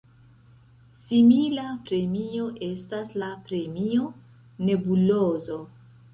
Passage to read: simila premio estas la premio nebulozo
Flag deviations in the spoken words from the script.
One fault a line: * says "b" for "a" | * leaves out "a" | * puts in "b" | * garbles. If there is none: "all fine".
all fine